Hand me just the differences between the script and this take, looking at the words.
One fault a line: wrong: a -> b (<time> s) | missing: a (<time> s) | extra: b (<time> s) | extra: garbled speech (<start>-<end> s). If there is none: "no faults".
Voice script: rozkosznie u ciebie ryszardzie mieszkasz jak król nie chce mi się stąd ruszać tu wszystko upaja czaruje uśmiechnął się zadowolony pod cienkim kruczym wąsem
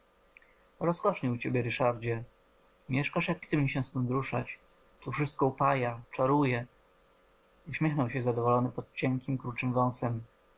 missing: król nie (3.5 s)